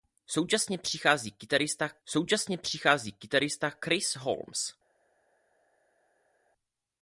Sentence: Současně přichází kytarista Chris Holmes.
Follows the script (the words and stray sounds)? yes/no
no